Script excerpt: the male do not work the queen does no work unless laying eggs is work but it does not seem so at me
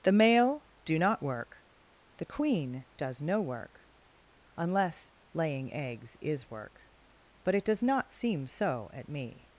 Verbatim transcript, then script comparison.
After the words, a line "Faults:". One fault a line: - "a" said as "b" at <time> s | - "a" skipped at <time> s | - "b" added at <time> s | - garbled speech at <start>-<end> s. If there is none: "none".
the male do not work the queen does no work unless laying eggs is work but it does not seem so at me
Faults:
none